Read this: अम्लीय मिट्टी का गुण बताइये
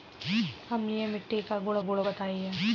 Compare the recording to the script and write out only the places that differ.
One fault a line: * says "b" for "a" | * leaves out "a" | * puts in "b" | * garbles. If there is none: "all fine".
* puts in "गुण"